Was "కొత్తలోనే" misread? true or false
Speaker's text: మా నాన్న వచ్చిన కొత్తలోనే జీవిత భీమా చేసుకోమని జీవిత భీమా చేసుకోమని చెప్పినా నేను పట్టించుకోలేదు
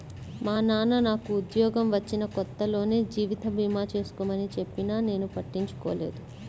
false